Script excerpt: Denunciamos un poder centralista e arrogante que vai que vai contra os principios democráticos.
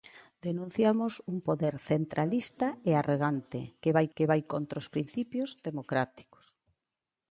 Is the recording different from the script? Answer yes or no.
no